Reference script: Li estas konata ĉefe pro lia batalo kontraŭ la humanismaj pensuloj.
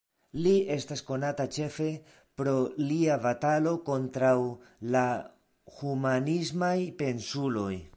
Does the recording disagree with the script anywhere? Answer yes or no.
no